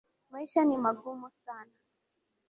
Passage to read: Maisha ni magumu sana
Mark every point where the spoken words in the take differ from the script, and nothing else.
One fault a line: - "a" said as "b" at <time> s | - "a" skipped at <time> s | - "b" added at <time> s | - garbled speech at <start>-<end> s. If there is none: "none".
none